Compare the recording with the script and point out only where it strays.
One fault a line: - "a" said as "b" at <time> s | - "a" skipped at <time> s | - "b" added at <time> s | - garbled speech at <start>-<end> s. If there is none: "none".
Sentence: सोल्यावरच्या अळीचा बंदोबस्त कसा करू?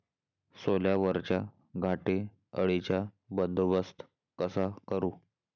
- "घाटे" added at 1.8 s